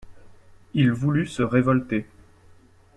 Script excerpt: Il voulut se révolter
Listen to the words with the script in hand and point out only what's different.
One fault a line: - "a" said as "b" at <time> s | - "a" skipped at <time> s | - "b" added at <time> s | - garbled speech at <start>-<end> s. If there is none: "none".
none